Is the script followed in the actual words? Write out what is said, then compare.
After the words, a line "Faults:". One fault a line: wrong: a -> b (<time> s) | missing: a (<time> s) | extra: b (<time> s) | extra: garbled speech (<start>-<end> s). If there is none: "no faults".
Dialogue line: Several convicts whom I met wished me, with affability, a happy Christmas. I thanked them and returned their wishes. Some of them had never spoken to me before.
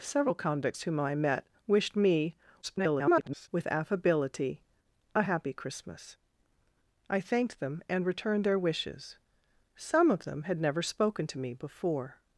Several convicts whom I met wished me, [garbled] with affability, a happy Christmas. I thanked them and returned their wishes. Some of them had never spoken to me before.
Faults:
extra: garbled speech (2.6-3.5 s)